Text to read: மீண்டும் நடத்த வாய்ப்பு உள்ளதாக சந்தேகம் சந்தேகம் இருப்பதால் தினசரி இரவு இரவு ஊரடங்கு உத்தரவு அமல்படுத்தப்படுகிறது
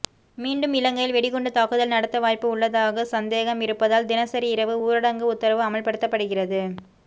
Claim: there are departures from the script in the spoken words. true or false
true